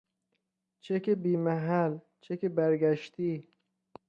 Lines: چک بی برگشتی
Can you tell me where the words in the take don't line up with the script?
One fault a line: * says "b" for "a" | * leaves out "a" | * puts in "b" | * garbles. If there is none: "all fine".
* puts in "محل چک"